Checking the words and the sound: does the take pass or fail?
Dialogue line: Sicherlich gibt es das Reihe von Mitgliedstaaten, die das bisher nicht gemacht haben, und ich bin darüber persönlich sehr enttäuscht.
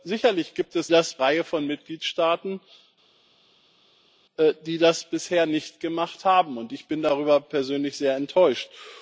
pass